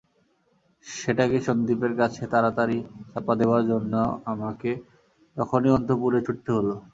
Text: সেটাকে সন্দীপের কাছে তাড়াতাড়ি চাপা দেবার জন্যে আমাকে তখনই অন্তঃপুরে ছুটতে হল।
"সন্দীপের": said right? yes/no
yes